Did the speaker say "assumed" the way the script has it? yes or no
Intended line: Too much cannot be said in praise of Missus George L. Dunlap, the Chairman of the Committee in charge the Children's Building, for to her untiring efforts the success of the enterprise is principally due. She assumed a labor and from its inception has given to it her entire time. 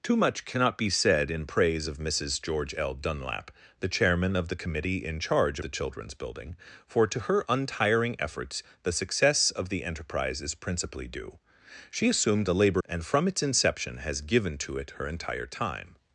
yes